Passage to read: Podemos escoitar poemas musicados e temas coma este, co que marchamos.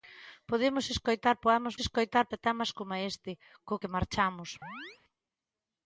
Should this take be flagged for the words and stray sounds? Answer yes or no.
yes